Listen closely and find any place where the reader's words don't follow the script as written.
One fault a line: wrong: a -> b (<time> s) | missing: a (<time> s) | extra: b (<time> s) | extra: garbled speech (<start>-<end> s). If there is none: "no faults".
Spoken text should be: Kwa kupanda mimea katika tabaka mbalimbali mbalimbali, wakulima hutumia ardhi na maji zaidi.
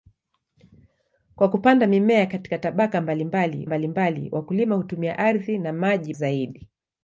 no faults